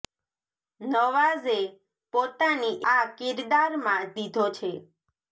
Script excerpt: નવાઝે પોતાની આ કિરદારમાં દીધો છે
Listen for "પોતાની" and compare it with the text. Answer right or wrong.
right